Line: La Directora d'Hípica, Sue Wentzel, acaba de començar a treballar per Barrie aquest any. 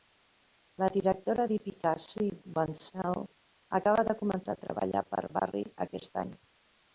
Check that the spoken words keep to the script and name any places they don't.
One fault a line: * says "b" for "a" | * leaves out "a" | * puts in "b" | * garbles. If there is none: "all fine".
all fine